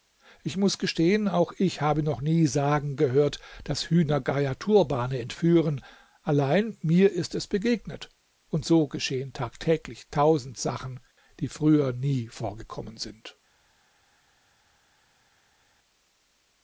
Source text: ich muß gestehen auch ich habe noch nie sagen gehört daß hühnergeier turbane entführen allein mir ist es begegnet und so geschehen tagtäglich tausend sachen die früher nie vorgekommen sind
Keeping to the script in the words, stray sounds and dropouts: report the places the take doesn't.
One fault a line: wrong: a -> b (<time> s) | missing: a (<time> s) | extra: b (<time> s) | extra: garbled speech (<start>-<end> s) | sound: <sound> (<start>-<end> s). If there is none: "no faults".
no faults